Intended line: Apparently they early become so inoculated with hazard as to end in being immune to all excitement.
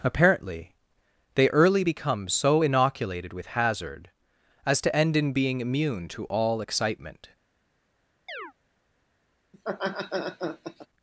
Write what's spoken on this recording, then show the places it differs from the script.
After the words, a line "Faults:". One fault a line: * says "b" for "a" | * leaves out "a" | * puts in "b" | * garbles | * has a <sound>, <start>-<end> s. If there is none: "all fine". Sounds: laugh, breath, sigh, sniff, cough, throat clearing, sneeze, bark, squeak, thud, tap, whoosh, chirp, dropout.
Apparently they early become so inoculated with hazard as to end in being immune to all excitement.
Faults:
* has a chirp, 8.3-8.5 s
* has a laugh, 9.5-10.9 s